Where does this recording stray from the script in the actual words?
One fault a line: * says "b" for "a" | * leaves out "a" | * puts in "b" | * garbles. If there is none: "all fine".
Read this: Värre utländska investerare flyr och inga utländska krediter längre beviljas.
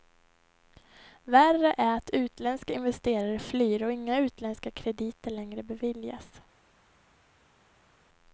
* puts in "är att"